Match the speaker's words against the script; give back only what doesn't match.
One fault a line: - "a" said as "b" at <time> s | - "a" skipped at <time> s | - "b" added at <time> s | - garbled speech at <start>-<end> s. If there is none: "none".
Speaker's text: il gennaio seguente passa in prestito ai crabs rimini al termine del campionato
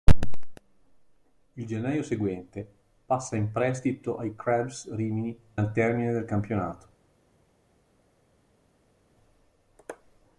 none